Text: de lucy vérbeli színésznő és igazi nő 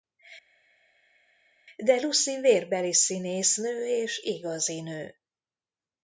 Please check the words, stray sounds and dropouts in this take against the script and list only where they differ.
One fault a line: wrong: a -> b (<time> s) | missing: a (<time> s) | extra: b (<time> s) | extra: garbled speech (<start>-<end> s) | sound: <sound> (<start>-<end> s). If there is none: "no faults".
no faults